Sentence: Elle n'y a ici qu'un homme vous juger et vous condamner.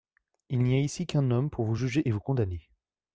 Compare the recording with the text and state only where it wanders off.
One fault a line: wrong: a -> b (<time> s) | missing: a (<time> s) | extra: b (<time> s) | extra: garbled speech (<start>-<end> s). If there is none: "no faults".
wrong: Elle -> Il (0.5 s)
extra: pour (1.5 s)